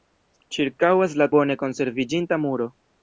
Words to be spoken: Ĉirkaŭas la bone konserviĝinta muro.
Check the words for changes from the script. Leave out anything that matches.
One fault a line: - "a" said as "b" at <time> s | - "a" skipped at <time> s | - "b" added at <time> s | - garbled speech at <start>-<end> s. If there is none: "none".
none